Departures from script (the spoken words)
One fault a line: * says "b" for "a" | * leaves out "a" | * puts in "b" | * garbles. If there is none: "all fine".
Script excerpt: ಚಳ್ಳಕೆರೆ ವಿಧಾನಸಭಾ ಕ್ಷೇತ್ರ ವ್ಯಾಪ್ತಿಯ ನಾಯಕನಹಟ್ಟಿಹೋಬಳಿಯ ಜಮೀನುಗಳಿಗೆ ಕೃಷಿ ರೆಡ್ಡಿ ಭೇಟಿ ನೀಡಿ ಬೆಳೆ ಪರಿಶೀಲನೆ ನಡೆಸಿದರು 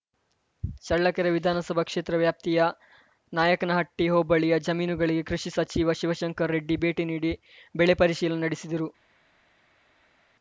* puts in "ಸಚಿವ ಶಿವಶಂಕರ"